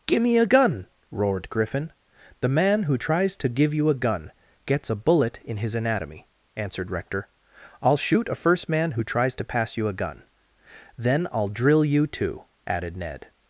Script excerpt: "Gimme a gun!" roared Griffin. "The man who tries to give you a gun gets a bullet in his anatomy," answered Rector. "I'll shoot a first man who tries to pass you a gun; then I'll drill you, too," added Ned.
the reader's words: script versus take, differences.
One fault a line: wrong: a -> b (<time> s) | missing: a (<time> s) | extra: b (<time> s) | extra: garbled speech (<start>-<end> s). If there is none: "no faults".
no faults